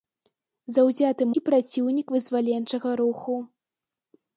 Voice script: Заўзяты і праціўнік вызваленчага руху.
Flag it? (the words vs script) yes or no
no